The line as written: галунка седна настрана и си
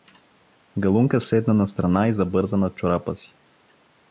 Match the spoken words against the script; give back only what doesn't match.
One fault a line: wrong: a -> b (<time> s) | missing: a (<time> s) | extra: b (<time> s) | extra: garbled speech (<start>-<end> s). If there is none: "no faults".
extra: забърза над чорапа (2.1 s)